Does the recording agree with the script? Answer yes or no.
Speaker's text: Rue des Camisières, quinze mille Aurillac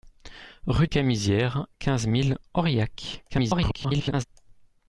no